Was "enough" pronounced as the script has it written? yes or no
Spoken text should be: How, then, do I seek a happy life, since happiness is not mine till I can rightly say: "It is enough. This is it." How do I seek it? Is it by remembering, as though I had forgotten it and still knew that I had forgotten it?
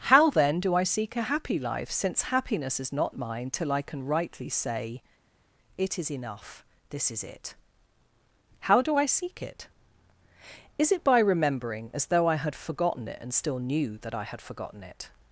yes